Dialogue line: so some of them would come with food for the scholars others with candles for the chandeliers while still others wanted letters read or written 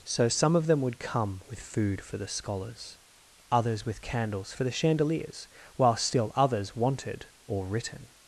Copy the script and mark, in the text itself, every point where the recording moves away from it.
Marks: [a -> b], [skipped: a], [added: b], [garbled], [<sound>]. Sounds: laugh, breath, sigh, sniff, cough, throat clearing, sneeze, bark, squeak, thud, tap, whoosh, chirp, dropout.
so some of them would come with food for the scholars others with candles for the chandeliers while still others wanted [skipped: letters read] or written